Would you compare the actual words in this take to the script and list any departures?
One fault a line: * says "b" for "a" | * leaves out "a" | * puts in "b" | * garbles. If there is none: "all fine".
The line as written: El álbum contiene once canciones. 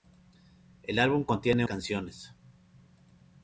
* leaves out "once"